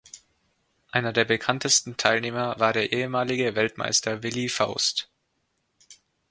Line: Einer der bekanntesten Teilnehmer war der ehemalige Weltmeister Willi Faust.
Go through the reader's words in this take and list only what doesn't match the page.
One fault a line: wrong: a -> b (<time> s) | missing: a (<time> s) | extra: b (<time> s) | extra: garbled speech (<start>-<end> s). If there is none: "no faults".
no faults